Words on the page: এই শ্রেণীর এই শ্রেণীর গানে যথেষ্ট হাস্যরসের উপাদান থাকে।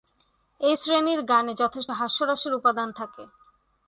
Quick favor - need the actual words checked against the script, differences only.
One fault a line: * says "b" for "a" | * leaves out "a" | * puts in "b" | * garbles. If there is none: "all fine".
* leaves out "এই শ্রেণীর"